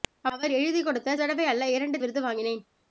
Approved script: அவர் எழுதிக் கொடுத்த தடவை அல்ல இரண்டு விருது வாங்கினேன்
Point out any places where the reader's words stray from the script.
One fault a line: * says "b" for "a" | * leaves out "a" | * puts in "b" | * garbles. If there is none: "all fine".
all fine